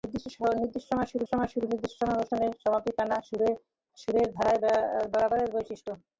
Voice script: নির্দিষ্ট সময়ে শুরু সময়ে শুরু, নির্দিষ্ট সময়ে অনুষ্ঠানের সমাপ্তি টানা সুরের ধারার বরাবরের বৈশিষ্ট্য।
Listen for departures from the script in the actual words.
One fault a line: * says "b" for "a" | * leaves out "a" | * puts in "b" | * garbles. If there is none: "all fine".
all fine